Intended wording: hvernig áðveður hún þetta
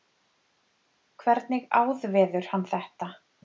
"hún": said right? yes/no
no